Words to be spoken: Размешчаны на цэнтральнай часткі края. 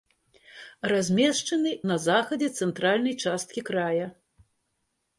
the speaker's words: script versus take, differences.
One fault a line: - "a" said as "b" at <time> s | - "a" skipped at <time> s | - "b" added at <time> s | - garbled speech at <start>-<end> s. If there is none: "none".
- "захадзе" added at 2.1 s